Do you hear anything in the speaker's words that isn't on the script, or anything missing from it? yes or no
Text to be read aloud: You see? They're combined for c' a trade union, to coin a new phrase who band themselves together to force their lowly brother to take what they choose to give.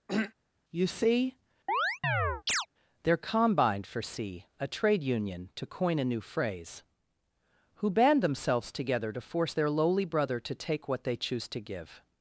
no